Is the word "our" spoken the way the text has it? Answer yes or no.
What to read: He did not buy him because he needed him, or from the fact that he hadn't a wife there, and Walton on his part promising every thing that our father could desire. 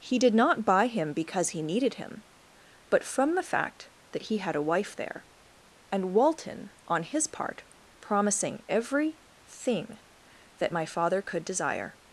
no